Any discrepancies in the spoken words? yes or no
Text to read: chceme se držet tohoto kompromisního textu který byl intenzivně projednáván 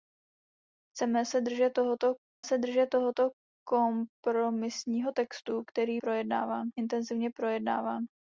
yes